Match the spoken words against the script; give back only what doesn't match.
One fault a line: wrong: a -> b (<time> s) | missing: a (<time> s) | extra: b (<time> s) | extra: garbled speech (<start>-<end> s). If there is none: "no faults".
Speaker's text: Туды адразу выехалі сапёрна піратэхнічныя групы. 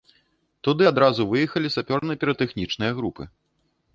no faults